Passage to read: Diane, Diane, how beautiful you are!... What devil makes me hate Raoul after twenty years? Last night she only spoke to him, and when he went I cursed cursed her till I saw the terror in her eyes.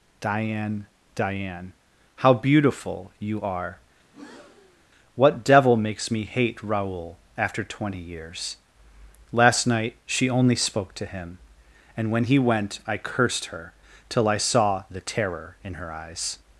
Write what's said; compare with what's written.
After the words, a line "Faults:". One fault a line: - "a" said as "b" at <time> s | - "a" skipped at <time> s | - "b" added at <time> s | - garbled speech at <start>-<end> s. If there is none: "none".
Diane, Diane, how beautiful you are!... What devil makes me hate Raoul after twenty years? Last night she only spoke to him, and when he went I cursed her till I saw the terror in her eyes.
Faults:
- "cursed" skipped at 13.5 s